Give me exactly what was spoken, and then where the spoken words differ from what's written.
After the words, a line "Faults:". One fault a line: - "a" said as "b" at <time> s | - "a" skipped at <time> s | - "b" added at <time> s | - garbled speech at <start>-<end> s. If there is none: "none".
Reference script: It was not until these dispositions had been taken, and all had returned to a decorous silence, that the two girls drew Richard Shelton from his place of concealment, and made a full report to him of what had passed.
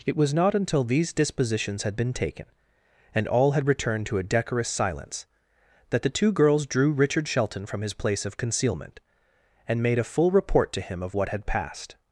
It was not until these dispositions had been taken, and all had returned to a decorous silence, that the two girls drew Richard Shelton from his place of concealment, and made a full report to him of what had passed.
Faults:
none